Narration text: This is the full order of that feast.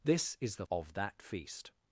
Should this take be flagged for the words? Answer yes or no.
yes